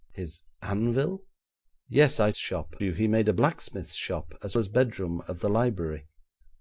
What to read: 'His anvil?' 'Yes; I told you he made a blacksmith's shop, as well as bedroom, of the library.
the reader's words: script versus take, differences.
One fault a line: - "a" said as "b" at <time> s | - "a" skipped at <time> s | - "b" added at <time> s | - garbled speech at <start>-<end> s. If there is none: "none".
- "told" said as "shop" at 2.4 s
- "well" skipped at 4.6 s